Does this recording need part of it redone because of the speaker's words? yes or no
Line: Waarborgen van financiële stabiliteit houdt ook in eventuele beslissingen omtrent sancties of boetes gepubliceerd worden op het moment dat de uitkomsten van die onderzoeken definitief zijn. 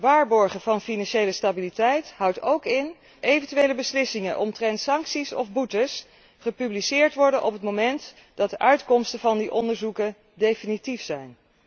no